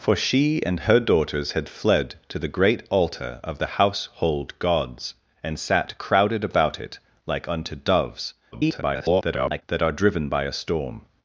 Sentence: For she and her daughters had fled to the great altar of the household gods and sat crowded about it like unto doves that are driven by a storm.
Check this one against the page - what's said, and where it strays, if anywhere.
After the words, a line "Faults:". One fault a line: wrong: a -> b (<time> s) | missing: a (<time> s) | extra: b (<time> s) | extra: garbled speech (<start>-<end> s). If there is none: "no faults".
For she and her daughters had fled to the great altar of the household gods and sat crowded about it like unto doves [garbled] that are driven by a storm.
Faults:
extra: garbled speech (8.5-9.6 s)